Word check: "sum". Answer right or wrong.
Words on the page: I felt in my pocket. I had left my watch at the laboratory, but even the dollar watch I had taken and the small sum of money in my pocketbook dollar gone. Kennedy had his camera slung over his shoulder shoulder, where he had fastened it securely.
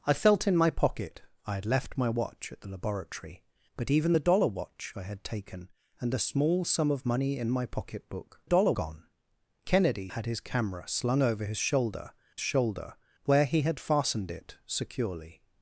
right